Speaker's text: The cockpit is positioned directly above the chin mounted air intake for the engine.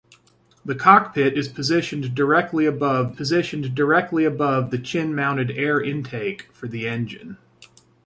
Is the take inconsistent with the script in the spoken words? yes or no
yes